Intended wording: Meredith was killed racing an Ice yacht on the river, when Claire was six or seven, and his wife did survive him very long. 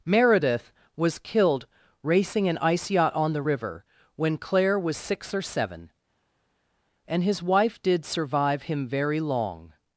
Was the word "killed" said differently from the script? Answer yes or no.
no